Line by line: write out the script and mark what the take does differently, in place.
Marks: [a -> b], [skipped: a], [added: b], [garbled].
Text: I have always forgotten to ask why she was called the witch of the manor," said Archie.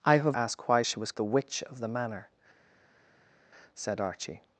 I have [skipped: always forgotten to] ask why she was [skipped: called] the witch of the manor," said Archie.